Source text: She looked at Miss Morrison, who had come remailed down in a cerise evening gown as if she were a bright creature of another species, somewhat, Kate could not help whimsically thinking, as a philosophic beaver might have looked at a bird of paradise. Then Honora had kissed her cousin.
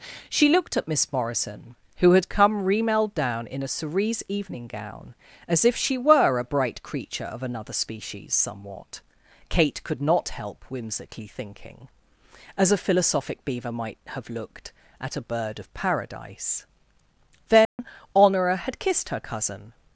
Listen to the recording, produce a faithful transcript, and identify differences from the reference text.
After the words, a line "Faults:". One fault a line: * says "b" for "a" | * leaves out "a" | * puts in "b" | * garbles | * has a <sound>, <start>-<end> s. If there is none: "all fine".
She looked at Miss Morrison, who had come remailed down in a cerise evening gown as if she were a bright creature of another species, somewhat, Kate could not help whimsically thinking, as a philosophic beaver might have looked at a bird of paradise. Then Honora had kissed her cousin.
Faults:
* has a dropout, 17.7-17.8 s